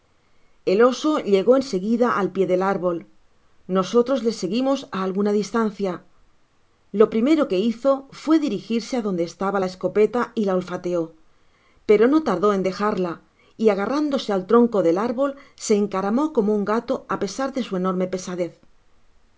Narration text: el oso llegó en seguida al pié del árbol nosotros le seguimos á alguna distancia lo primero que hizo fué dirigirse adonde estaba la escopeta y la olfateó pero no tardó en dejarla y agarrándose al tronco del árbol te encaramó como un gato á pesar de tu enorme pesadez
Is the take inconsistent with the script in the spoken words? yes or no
yes